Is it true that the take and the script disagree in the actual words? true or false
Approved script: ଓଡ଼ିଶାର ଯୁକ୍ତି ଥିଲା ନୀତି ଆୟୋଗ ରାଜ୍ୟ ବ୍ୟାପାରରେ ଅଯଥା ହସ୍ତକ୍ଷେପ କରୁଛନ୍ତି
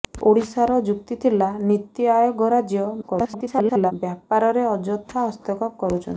true